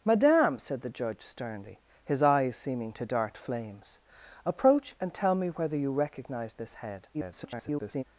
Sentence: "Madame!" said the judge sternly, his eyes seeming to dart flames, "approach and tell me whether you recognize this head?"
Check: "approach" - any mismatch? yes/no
no